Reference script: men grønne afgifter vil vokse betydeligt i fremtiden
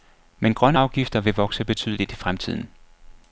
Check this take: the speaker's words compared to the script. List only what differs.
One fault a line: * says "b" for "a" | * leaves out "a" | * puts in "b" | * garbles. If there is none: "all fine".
all fine